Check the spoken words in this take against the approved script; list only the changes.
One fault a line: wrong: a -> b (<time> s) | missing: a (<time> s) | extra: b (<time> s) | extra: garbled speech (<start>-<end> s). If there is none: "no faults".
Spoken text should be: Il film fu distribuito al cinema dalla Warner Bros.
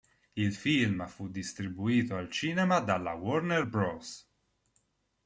no faults